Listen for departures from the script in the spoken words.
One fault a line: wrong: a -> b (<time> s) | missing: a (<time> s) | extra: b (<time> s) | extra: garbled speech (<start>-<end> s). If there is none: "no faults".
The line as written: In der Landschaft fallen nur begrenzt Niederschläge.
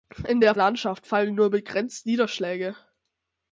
no faults